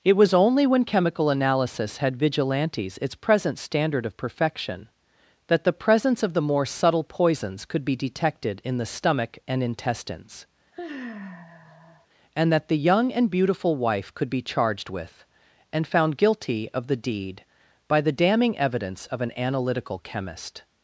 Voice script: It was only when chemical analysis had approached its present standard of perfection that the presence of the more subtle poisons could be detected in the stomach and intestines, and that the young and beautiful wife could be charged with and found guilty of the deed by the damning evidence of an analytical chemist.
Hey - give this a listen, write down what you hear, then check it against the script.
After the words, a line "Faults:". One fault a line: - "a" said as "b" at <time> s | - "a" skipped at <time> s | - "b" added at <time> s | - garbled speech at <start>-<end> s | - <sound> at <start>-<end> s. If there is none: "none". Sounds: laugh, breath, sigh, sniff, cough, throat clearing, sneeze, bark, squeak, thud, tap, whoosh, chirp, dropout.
It was only when chemical analysis had vigilantes its present standard of perfection that the presence of the more subtle poisons could be detected in the stomach and intestines, and that the young and beautiful wife could be charged with and found guilty of the deed by the damning evidence of an analytical chemist.
Faults:
- "approached" said as "vigilantes" at 2.2 s
- sigh at 10.7-12.1 s